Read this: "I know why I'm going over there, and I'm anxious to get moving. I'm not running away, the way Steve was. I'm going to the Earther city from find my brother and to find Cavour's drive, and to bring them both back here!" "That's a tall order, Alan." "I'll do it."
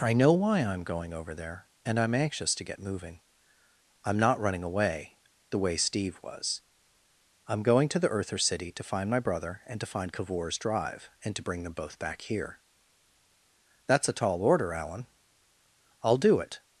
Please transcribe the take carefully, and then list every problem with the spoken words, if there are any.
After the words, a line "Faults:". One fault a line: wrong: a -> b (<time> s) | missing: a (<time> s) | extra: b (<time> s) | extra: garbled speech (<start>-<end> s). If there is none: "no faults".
"I know why I'm going over there, and I'm anxious to get moving. I'm not running away, the way Steve was. I'm going to the Earther city to find my brother and to find Cavour's drive, and to bring them both back here!" "That's a tall order, Alan." "I'll do it."
Faults:
wrong: from -> to (8.7 s)